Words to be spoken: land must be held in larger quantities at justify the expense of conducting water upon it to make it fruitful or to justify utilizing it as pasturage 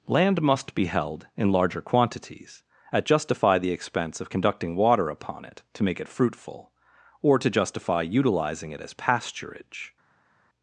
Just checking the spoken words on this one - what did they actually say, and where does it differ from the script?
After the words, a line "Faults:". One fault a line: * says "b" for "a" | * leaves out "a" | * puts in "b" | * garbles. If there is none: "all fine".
land must be held in larger quantities at justify the expense of conducting water upon it to make it fruitful or to justify utilizing it as pasturage
Faults:
all fine